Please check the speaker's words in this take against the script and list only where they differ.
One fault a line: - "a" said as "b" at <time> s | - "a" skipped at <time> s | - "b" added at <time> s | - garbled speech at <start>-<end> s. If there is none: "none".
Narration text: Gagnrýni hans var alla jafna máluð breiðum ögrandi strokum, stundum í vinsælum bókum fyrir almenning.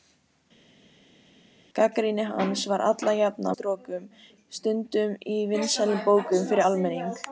- "máluð breiðum ögrandi" skipped at 3.5 s